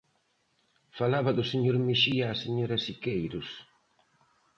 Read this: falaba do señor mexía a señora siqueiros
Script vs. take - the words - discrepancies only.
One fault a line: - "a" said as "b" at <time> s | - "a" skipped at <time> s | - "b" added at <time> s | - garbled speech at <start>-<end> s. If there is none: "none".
none